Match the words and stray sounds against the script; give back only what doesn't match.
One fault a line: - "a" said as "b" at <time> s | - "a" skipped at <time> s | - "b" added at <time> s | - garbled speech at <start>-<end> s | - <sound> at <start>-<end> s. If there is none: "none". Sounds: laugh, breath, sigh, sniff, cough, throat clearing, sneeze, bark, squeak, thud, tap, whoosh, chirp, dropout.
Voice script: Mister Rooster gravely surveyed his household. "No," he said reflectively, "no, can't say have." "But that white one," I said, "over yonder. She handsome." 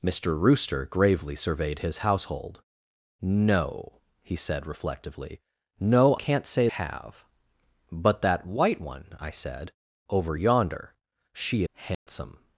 - dropout at 11.9-12.1 s